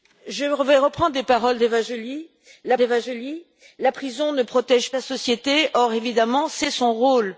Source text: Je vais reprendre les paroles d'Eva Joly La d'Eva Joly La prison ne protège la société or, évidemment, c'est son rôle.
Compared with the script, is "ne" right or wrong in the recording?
right